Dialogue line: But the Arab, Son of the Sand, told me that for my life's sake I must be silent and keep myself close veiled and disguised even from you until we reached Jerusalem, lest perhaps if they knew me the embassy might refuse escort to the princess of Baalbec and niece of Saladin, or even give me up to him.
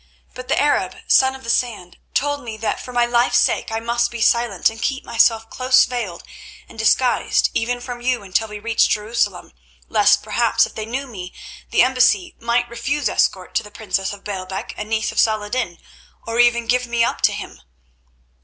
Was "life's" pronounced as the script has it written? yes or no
yes